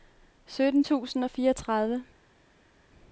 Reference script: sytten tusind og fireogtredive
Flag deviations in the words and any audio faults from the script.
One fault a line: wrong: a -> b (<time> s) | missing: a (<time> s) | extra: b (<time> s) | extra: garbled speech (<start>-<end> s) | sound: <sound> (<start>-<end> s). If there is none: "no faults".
no faults